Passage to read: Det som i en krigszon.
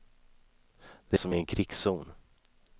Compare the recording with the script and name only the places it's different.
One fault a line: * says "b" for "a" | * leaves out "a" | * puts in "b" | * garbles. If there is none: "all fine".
all fine